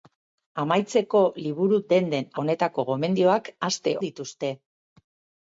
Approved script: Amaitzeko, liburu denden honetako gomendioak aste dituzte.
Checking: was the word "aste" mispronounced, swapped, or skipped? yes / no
no